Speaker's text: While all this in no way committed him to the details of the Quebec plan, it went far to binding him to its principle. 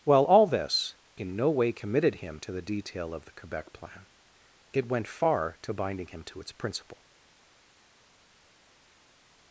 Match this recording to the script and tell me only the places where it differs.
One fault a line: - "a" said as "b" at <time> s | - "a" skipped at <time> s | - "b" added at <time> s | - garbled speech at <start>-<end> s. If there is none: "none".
- "details" said as "detail" at 2.6 s